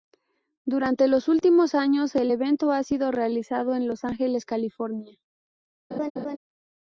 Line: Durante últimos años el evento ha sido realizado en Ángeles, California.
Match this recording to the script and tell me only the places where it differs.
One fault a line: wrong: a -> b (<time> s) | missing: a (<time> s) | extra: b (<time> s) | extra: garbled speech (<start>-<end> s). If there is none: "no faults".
extra: los (1.1 s)
extra: Los (3.9 s)